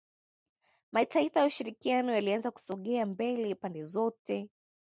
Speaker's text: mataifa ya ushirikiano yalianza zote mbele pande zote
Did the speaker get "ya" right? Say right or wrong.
right